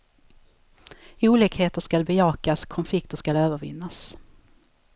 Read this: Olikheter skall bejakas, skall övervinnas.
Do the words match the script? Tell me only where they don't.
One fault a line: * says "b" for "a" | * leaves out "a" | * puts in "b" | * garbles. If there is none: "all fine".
* puts in "konflikter"